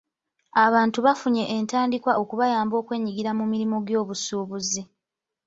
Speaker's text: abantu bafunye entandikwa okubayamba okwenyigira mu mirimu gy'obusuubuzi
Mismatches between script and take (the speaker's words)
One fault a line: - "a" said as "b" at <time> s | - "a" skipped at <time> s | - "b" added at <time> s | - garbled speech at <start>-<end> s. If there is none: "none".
none